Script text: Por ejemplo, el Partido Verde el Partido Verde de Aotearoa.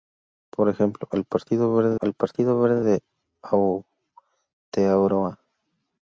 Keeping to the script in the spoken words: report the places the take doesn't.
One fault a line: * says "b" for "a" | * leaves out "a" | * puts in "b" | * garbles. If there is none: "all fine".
all fine